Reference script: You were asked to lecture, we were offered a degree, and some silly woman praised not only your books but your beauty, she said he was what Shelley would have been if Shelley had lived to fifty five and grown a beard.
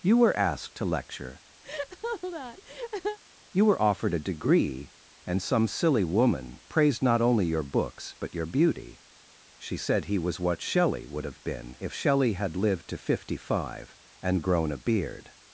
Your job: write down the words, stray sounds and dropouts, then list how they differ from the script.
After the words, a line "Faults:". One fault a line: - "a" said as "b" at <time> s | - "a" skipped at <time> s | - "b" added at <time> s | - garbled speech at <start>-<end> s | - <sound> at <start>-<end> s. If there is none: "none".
You were asked to lecture, you were offered a degree, and some silly woman praised not only your books but your beauty, she said he was what Shelley would have been if Shelley had lived to fifty five and grown a beard.
Faults:
- laugh at 1.6-3.2 s
- "we" said as "you" at 3.5 s